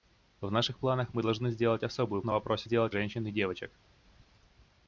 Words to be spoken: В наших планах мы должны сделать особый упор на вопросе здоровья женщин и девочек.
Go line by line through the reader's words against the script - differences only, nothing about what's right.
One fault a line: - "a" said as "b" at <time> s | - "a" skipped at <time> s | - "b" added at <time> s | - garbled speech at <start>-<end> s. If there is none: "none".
- "упор" skipped at 2.2 s
- "здоровья" said as "сделать" at 2.6 s